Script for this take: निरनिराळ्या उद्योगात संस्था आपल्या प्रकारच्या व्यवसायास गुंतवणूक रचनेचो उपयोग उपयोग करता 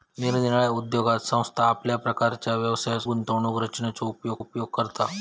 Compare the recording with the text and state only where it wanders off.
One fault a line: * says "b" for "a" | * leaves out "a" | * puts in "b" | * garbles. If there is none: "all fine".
all fine